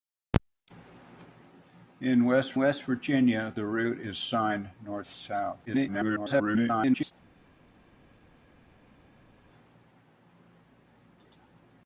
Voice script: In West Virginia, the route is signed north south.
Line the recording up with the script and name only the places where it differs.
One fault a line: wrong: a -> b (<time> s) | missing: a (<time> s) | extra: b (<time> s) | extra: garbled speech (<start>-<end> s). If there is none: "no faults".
extra: West (2.6 s)
extra: garbled speech (5.7-7.1 s)